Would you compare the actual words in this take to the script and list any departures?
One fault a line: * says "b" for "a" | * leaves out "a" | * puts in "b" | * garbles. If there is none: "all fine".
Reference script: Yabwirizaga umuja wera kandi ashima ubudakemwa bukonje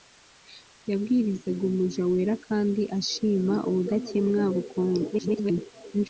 * garbles